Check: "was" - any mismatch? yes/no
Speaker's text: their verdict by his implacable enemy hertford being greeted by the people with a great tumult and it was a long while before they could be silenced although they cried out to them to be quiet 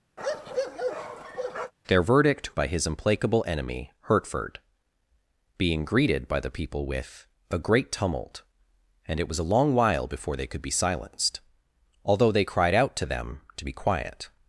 no